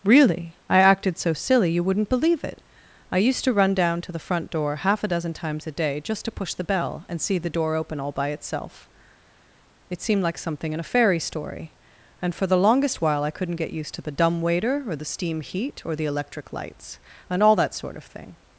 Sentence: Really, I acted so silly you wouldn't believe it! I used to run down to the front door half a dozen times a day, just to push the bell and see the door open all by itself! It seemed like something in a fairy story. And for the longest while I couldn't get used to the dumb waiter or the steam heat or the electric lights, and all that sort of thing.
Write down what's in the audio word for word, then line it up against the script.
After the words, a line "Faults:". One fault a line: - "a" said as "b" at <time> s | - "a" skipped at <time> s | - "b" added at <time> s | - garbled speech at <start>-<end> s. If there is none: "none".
Really, I acted so silly you wouldn't believe it! I used to run down to the front door half a dozen times a day, just to push the bell and see the door open all by itself! It seemed like something in a fairy story. And for the longest while I couldn't get used to the dumb waiter or the steam heat or the electric lights, and all that sort of thing.
Faults:
none